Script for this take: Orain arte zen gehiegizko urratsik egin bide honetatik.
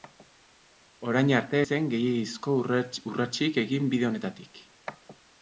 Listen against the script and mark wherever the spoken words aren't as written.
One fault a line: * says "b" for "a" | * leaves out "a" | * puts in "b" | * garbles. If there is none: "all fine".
all fine